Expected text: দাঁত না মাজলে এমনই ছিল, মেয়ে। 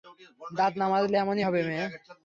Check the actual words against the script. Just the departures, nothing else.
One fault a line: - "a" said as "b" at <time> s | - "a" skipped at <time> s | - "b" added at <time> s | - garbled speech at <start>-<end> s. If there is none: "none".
- "ছিল" said as "হবে" at 1.5 s